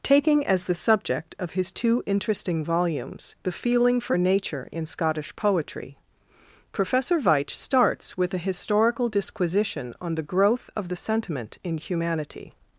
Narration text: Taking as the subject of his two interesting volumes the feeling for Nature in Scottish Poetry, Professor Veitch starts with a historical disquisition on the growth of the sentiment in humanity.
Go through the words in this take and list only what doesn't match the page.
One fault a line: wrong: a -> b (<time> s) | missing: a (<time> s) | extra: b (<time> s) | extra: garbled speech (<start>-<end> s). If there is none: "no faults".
no faults